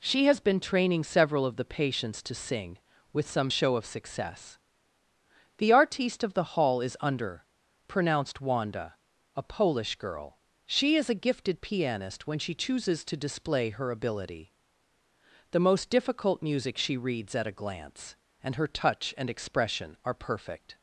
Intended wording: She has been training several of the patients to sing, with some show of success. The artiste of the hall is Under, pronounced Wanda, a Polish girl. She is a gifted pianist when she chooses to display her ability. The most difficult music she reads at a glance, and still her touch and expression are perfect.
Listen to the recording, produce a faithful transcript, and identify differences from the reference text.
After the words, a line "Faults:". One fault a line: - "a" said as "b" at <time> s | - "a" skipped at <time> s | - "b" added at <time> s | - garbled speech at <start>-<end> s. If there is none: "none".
She has been training several of the patients to sing, with some show of success. The artiste of the hall is Under, pronounced Wanda, a Polish girl. She is a gifted pianist when she chooses to display her ability. The most difficult music she reads at a glance, and her touch and expression are perfect.
Faults:
- "still" skipped at 18.5 s